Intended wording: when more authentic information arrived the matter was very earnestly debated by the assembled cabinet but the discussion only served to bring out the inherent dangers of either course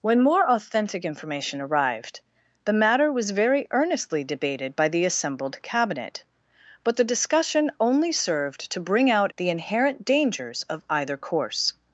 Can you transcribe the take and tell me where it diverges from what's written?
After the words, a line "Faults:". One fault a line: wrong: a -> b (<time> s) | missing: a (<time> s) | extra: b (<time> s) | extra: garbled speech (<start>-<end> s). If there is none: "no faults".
when more authentic information arrived the matter was very earnestly debated by the assembled cabinet but the discussion only served to bring out the inherent dangers of either course
Faults:
no faults